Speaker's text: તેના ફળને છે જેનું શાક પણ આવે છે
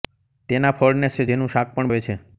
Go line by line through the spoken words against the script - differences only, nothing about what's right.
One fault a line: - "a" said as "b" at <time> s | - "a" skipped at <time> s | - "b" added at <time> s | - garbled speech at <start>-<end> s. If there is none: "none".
none